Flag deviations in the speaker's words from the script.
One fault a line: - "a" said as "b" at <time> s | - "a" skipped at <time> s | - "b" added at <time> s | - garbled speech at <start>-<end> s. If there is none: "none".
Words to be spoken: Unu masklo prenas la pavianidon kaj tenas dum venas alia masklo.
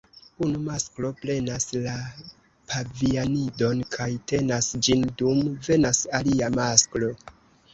- "ĝin" added at 4.9 s